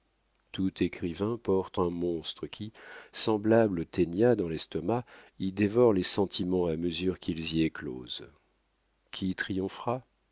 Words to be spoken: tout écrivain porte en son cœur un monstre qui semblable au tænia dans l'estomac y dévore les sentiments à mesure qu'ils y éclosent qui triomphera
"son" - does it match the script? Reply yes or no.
no